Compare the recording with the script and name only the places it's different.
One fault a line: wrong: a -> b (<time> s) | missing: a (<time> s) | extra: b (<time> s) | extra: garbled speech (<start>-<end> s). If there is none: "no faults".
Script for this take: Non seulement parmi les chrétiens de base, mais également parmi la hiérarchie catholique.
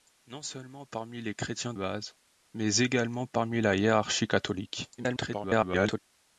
missing: de (1.8 s)
extra: garbled speech (5.0-6.0 s)